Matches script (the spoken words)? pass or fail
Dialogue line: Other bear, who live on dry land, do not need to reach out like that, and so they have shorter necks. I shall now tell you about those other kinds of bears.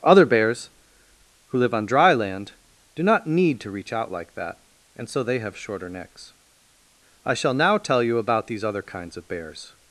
fail